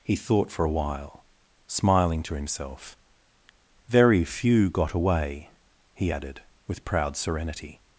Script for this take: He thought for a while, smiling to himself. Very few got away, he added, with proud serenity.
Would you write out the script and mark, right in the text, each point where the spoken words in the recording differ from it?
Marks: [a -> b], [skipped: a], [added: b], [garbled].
He thought for a while, smiling to himself. Very few got away, he added, with proud serenity.